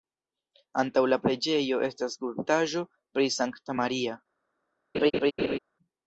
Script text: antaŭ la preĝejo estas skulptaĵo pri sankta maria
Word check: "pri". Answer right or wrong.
right